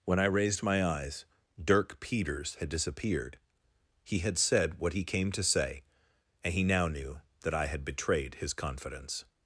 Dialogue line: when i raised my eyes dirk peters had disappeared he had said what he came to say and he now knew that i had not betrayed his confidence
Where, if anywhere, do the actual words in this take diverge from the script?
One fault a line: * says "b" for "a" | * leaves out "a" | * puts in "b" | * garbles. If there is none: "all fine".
* leaves out "not"